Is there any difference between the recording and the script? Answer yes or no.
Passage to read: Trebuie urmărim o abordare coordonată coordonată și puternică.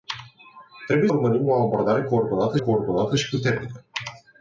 no